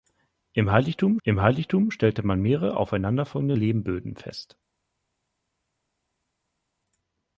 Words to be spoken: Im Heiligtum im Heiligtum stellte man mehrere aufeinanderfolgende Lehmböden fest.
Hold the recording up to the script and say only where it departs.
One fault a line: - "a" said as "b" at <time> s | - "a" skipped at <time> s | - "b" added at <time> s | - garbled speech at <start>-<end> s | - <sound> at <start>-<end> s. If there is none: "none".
none